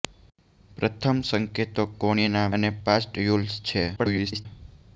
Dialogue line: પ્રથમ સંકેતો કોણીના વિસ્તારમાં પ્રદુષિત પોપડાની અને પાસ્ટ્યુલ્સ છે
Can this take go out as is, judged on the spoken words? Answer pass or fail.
fail